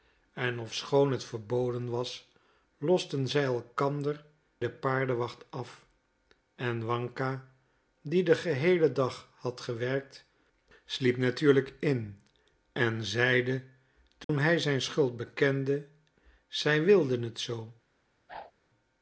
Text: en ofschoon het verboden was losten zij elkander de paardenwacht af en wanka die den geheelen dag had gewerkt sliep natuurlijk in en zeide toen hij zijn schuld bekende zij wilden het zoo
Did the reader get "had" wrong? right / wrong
right